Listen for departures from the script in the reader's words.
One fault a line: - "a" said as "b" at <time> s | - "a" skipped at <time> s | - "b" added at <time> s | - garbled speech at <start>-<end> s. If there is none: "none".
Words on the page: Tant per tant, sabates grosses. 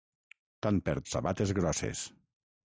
- "tant" skipped at 0.9 s